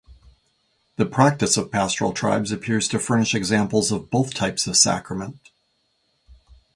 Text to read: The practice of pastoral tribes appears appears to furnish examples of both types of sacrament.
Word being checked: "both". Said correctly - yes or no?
yes